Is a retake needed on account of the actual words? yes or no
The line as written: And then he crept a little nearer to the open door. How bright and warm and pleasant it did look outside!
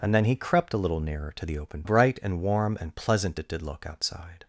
yes